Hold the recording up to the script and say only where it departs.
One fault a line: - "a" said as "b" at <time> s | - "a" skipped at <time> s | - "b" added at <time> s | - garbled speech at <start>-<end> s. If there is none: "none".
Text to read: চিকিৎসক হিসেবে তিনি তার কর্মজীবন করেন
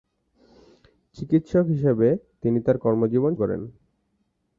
none